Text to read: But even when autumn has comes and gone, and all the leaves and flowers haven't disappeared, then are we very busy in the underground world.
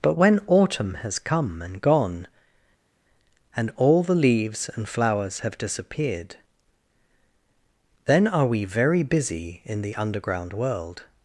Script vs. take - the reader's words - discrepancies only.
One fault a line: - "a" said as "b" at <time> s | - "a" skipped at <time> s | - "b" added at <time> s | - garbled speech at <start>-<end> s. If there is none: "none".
- "even" skipped at 0.2 s
- "comes" said as "come" at 1.2 s
- "haven't" said as "have" at 5.4 s